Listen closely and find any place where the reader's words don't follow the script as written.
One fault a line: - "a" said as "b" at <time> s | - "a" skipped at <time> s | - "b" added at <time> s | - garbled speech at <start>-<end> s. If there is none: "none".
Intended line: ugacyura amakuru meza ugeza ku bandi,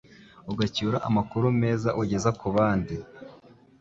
none